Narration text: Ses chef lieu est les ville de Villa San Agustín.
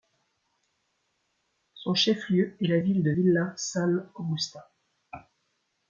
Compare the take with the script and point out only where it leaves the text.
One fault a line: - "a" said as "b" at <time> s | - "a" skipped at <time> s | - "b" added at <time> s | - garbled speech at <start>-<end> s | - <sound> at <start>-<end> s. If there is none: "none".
- "Ses" said as "Son" at 1.8 s
- "les" said as "la" at 2.7 s